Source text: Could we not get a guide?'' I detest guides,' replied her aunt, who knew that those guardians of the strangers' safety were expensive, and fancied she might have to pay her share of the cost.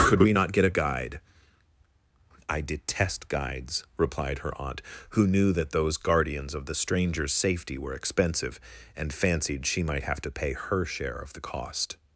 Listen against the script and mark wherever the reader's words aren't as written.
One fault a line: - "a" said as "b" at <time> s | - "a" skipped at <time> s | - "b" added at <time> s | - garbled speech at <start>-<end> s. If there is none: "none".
none